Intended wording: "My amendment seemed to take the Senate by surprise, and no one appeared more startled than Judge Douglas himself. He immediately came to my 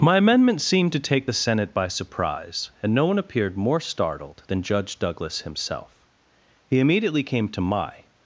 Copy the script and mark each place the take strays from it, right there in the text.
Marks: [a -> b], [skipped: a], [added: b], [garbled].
"My amendment seemed to take the Senate by surprise, and no one appeared more startled than Judge Douglas himself. He immediately came to my